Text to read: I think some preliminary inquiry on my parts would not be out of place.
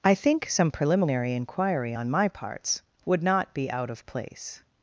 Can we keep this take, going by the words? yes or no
yes